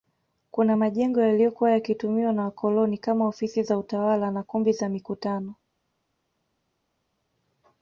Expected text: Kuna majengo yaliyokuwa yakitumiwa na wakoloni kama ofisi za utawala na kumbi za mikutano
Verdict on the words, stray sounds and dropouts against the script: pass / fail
pass